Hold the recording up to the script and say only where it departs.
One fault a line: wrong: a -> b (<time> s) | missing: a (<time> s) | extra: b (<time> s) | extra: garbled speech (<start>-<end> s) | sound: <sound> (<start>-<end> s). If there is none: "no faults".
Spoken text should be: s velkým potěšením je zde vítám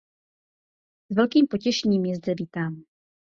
no faults